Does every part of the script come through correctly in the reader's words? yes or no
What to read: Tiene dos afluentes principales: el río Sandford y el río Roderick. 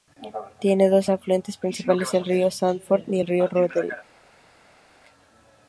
yes